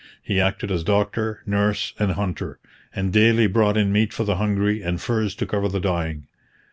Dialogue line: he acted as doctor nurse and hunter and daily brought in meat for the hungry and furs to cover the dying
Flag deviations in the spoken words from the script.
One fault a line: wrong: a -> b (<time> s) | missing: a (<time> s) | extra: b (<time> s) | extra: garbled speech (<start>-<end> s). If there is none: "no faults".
no faults